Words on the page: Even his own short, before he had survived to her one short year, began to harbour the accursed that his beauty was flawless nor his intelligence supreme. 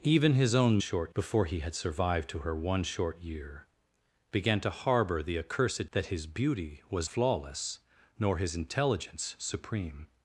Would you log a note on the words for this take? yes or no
no